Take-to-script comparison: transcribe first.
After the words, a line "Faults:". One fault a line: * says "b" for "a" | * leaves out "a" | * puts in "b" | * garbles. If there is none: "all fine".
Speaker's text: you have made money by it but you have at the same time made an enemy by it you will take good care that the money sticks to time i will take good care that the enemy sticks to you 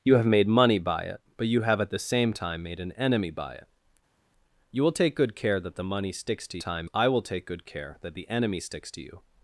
you have made money by it but you have at the same time made an enemy by it you will take good care that the money sticks to time i will take good care that the enemy sticks to you
Faults:
all fine